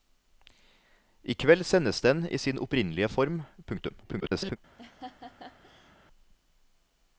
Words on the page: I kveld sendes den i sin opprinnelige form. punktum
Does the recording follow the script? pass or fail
fail